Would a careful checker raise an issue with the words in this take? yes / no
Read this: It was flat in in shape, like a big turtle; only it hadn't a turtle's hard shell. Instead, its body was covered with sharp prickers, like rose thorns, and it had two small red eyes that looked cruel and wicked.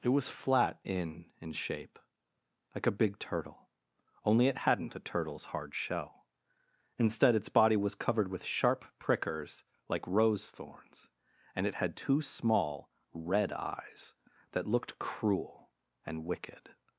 no